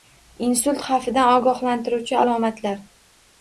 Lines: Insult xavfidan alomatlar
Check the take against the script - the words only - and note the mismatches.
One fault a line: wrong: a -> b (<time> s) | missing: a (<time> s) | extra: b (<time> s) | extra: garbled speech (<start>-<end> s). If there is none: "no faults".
extra: ogohlantiruvchi (1.4 s)